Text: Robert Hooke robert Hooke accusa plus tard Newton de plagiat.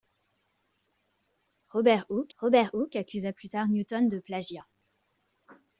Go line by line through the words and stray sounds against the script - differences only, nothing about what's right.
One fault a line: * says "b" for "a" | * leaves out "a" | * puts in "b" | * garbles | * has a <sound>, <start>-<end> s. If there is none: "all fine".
all fine